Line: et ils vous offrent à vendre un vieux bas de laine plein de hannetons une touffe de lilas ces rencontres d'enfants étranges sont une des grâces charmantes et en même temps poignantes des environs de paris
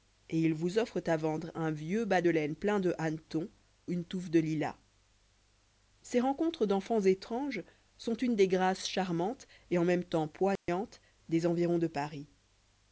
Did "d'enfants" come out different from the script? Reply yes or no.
no